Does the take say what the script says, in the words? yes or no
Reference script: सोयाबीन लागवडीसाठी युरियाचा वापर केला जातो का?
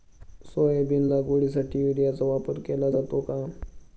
yes